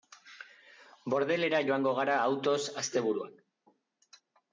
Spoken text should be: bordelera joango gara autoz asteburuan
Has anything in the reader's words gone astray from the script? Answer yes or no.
no